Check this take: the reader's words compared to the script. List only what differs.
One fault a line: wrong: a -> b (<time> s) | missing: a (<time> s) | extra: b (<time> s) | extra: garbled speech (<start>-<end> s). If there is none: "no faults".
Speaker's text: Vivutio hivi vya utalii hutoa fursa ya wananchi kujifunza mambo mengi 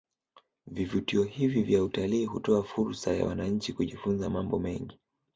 no faults